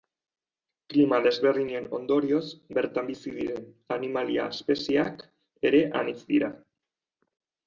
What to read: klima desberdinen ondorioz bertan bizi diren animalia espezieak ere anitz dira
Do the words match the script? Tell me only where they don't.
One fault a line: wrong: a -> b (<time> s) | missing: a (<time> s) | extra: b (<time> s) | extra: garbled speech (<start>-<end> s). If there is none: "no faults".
no faults